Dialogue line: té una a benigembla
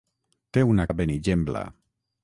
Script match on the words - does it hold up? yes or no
yes